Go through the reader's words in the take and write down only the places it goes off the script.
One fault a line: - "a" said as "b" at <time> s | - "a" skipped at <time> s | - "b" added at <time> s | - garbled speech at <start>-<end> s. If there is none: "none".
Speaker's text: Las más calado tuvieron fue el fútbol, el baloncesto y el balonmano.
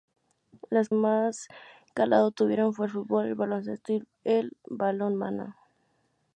none